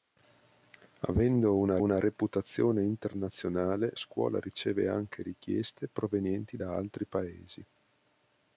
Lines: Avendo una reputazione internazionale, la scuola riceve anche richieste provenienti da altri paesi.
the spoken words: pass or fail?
fail